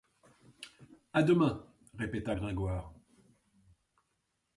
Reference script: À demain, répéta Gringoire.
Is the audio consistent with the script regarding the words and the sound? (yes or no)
yes